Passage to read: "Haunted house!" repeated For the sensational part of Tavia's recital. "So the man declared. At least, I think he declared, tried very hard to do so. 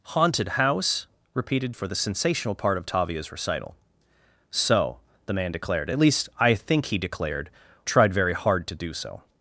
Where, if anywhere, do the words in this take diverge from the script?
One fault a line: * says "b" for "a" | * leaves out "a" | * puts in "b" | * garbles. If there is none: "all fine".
all fine